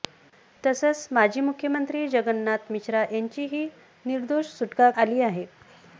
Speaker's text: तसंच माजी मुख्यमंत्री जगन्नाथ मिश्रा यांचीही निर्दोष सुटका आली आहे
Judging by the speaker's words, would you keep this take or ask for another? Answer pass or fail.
pass